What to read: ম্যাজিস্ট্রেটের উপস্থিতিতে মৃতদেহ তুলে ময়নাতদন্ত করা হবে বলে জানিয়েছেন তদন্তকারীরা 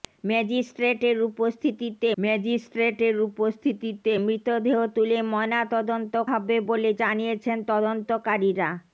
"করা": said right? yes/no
no